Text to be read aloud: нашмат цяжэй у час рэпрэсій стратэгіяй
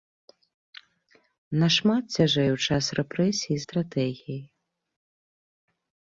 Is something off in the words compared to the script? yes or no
no